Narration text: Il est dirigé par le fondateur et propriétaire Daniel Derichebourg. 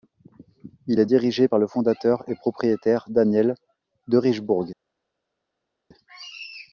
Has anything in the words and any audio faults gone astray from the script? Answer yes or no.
no